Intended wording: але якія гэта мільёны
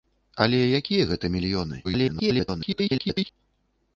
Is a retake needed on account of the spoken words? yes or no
yes